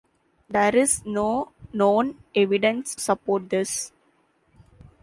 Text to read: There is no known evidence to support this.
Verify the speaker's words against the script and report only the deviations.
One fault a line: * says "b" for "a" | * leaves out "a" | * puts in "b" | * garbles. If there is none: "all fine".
* leaves out "to"